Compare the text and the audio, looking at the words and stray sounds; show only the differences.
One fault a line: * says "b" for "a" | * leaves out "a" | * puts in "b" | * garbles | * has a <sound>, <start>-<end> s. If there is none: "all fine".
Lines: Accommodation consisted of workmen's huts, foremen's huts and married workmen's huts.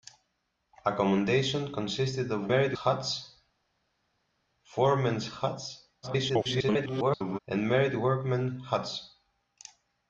* says "married" for "workmen's"
* garbles